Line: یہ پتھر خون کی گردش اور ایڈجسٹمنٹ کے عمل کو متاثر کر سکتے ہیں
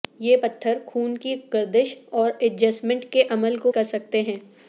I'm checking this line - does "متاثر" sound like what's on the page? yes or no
no